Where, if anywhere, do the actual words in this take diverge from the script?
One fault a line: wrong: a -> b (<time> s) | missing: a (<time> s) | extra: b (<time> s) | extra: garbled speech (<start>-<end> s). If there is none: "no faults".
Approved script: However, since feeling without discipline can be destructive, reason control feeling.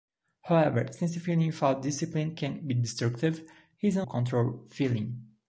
no faults